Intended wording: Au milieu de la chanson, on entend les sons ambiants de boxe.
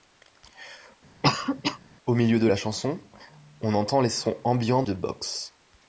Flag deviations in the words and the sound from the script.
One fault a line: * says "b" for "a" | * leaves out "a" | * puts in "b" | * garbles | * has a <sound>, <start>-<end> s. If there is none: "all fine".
* has a cough, 1.2-1.8 s